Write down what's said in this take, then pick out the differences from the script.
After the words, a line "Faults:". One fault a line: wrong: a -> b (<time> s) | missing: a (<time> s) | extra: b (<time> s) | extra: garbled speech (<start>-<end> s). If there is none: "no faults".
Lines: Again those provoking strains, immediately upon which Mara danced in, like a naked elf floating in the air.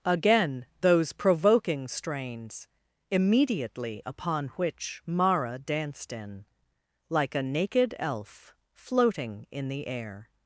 Again those provoking strains, immediately upon which Mara danced in, like a naked elf floating in the air.
Faults:
no faults